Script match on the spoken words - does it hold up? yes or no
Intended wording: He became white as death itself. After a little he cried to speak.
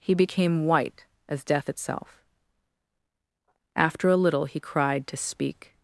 yes